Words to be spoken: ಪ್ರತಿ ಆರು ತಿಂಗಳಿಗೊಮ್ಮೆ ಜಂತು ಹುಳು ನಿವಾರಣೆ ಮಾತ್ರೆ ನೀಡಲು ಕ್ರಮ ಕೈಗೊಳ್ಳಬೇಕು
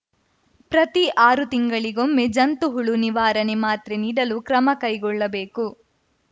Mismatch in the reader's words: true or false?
false